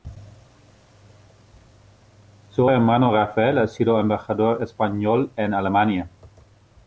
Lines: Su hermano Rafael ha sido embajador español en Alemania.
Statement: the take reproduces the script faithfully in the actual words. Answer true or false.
true